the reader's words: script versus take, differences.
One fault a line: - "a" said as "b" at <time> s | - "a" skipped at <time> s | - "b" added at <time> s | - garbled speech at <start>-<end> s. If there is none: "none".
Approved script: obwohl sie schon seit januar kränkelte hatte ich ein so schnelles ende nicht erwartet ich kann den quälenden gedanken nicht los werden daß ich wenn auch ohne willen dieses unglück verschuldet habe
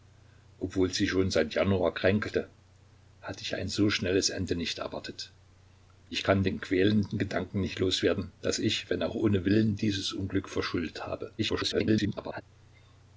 - garbled speech at 11.4-12.4 s